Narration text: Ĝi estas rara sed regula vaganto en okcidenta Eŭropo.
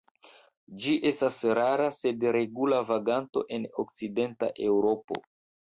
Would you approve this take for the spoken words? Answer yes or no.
yes